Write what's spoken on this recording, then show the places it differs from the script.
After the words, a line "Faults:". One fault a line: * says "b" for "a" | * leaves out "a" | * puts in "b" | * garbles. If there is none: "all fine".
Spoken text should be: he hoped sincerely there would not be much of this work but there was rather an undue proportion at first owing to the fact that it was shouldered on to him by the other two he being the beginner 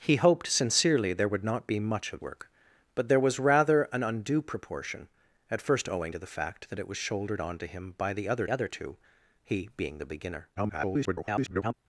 he hoped sincerely there would not be much of work but there was rather an undue proportion at first owing to the fact that it was shouldered on to him by the other other two he being the beginner [garbled]
Faults:
* leaves out "this"
* puts in "other"
* garbles